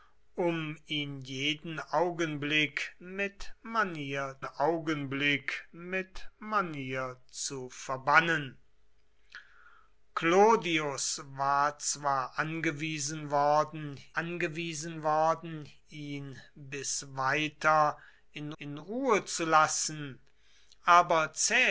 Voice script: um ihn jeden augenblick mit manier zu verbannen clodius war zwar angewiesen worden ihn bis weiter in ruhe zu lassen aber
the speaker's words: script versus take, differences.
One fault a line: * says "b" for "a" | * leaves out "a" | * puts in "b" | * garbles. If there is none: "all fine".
* puts in "augenblick mit manier"
* puts in "angewiesen worden"
* puts in "in"